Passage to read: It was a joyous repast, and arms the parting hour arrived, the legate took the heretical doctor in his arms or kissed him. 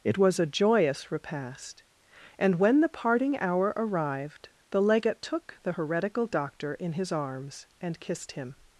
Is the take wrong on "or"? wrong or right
wrong